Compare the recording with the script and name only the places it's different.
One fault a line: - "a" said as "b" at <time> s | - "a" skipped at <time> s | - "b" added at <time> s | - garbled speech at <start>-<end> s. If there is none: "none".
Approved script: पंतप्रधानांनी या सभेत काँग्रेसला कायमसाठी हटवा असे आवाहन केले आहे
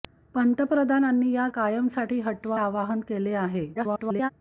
- "सभेत काँग्रेसला" skipped at 1.5 s
- "असे" skipped at 2.6 s
- garbled speech at 3.7-4.3 s